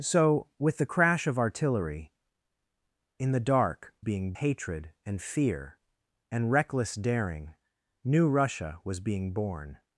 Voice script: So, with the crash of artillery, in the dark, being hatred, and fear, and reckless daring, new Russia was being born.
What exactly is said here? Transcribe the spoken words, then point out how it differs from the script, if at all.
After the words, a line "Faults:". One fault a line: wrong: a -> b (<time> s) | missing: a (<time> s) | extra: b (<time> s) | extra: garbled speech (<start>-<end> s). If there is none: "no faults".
So, with the crash of artillery, in the dark, being hatred, and fear, and reckless daring, new Russia was being born.
Faults:
no faults